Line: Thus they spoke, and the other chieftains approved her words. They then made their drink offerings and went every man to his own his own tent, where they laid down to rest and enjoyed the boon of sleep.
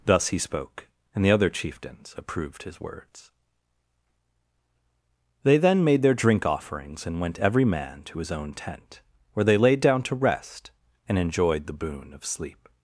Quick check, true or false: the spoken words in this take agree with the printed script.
false